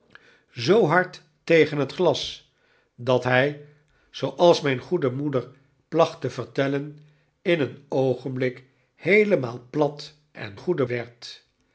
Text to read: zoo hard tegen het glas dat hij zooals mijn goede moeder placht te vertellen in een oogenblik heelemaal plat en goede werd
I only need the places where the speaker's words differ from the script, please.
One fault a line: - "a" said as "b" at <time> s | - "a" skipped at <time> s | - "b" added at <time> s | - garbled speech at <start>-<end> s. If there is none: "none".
none